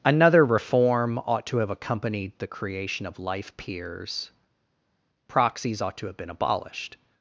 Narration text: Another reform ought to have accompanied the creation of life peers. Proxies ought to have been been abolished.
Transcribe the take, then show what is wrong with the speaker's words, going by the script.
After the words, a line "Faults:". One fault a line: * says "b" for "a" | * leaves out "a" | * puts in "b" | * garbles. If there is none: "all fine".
Another reform ought to have accompanied the creation of life peers. Proxies ought to have been abolished.
Faults:
* leaves out "been"